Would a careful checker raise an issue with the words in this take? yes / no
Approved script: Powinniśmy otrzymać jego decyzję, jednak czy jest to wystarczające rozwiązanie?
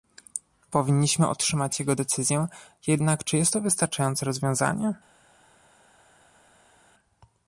no